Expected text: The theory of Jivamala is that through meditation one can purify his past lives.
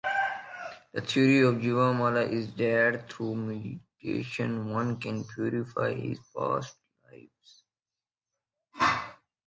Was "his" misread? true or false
false